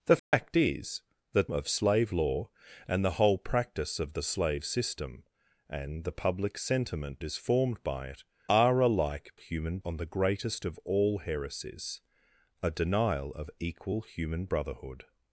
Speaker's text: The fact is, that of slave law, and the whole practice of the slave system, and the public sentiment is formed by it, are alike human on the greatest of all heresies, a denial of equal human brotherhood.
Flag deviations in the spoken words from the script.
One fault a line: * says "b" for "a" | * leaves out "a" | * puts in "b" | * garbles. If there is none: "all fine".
all fine